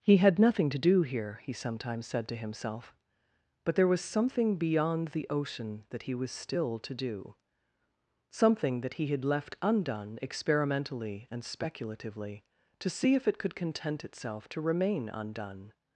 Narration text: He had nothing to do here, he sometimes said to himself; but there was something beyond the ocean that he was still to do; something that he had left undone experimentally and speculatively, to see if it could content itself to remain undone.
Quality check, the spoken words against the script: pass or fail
pass